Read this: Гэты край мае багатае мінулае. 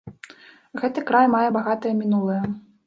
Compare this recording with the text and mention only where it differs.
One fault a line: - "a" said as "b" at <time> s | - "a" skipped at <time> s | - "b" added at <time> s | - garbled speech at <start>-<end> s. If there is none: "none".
none